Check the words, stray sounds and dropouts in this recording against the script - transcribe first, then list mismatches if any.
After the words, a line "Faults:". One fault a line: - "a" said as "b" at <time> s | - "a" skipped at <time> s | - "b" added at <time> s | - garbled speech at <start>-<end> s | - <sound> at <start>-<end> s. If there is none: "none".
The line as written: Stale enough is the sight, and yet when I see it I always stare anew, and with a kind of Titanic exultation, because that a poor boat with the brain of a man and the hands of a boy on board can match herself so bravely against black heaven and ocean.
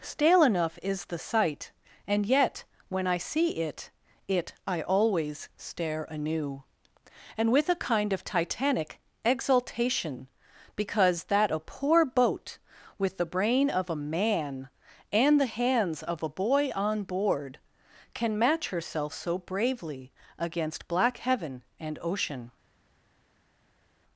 Stale enough is the sight, and yet when I see it it I always stare anew, and with a kind of Titanic exultation, because that a poor boat with the brain of a man and the hands of a boy on board can match herself so bravely against black heaven and ocean.
Faults:
- "it" added at 4.3 s